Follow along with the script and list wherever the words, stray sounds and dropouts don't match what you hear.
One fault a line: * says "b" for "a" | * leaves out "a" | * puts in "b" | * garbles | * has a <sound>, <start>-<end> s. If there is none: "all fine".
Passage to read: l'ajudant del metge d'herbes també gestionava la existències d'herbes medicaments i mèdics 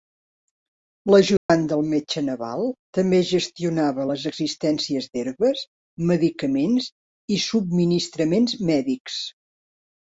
* has a dropout, 1.4-1.5 s
* says "naval" for "d'herbes"
* says "les" for "la"
* puts in "subministraments"